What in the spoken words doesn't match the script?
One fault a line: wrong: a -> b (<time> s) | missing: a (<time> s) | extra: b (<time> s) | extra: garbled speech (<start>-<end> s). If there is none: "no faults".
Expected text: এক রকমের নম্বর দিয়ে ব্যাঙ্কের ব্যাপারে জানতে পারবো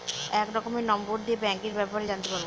no faults